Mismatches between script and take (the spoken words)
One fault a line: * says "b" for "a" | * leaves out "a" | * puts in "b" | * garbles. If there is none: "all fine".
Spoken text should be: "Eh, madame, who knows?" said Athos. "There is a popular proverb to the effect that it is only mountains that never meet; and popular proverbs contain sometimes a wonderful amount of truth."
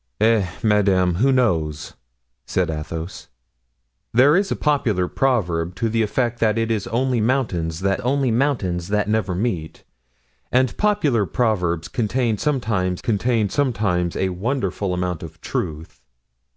* puts in "only mountains that"
* puts in "contain sometimes"